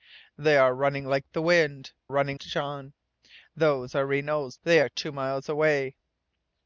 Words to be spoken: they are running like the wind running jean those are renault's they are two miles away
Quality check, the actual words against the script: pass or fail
pass